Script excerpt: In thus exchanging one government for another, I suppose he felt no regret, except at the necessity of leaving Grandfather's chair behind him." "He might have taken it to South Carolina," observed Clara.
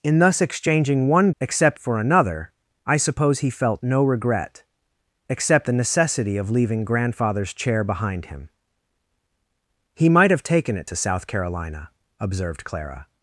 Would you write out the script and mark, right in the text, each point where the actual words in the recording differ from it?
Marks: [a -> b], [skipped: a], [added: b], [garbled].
In thus exchanging one [government -> except] for another, I suppose he felt no regret, except [skipped: at] the necessity of leaving Grandfather's chair behind him." "He might have taken it to South Carolina," observed Clara.